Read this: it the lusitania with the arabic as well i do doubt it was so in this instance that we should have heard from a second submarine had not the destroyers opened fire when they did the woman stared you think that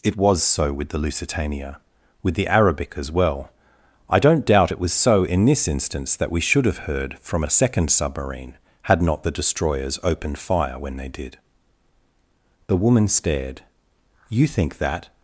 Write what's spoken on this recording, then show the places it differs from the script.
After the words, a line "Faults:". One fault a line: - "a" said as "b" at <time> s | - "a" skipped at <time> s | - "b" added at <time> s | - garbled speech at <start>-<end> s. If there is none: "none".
it was so with the lusitania with the arabic as well i don't doubt it was so in this instance that we should have heard from a second submarine had not the destroyers opened fire when they did the woman stared you think that
Faults:
- "was so with" added at 0.2 s
- "do" said as "don't" at 4.2 s